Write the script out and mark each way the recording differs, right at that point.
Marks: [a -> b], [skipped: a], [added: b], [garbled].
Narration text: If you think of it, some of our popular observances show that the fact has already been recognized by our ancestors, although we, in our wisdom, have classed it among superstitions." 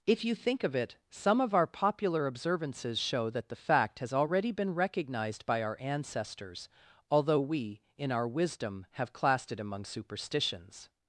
If you think of it, some of our popular observances show that the fact has already been recognized by our ancestors, although we, in our wisdom, have classed it among superstitions."